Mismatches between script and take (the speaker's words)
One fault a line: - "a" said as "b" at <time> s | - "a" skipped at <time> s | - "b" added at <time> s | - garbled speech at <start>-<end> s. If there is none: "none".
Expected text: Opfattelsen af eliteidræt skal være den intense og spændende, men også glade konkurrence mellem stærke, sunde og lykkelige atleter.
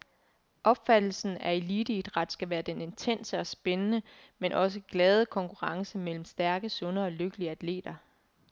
none